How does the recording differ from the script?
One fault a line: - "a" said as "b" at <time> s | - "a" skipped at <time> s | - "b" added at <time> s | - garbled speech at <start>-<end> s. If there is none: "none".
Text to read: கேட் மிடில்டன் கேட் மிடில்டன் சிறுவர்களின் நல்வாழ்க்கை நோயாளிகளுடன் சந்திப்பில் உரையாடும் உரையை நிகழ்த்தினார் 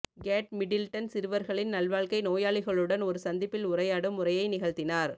- "கேட் மிடில்டன்" skipped at 1.1 s
- "ஒரு" added at 3.0 s